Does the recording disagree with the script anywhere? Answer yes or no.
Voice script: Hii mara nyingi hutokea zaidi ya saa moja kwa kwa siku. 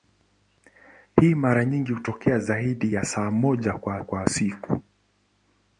no